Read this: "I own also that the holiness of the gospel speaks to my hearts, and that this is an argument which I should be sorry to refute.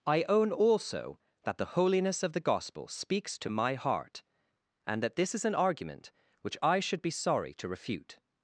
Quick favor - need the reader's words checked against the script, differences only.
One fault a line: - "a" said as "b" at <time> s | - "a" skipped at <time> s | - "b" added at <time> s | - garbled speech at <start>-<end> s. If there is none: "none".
- "hearts" said as "heart" at 3.8 s